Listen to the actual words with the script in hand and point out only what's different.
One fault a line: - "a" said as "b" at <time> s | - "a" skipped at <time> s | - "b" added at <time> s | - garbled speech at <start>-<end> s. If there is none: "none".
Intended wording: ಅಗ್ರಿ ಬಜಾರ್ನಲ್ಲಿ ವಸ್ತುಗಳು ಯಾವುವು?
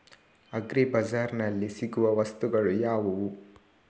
- "ಸಿಗುವ" added at 1.7 s